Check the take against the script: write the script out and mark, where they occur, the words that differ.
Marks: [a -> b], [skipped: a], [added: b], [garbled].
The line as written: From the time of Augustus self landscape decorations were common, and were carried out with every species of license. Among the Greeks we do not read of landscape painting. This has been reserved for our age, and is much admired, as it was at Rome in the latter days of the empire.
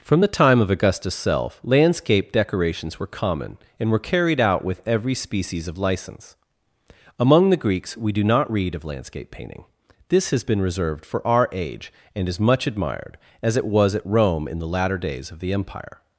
From the time of Augustus self landscape decorations were common, and were carried out with every species of license. Among the Greeks we do not read of landscape painting. This has been reserved for our age, and is much admired, as it was at Rome in the latter days of the empire.